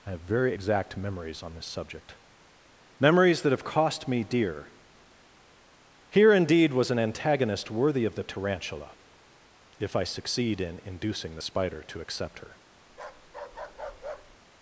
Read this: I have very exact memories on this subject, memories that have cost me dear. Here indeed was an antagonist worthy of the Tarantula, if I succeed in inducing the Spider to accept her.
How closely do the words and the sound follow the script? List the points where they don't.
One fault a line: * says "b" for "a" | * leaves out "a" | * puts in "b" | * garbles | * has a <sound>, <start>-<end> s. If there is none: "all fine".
* has a bark, 12.9-14.4 s